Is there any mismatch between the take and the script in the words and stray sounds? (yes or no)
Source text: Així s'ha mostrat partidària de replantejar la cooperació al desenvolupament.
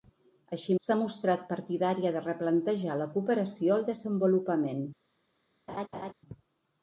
yes